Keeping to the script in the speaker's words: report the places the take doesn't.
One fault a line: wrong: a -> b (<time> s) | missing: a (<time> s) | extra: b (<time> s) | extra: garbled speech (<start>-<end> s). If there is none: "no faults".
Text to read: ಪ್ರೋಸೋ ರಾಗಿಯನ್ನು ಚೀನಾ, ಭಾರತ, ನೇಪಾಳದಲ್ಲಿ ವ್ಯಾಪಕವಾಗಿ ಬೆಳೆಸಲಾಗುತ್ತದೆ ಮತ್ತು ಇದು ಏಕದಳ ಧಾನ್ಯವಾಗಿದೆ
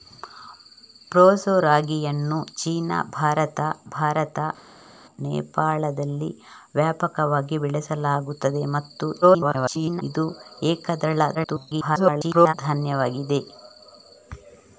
extra: ಭಾರತ (3.9 s)
extra: garbled speech (9.2-10.0 s)
extra: garbled speech (11.3-12.5 s)